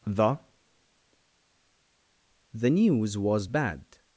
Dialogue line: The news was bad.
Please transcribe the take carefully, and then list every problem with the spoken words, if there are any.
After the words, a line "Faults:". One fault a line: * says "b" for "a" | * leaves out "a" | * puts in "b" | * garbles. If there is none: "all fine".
The the news was bad.
Faults:
* puts in "the"